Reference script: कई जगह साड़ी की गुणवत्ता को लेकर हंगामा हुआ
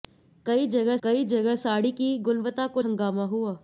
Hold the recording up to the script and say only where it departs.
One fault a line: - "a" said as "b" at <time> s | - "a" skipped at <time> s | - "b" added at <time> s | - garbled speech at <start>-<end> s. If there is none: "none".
- "कई जगह" added at 1.0 s
- "लेकर" skipped at 2.8 s